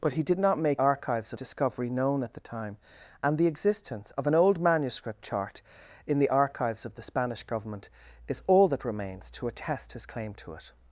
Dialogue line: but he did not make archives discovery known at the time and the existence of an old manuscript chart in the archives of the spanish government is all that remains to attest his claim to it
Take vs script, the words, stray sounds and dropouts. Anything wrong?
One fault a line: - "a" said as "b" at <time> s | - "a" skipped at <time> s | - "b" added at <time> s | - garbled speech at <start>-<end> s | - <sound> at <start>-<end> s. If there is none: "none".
none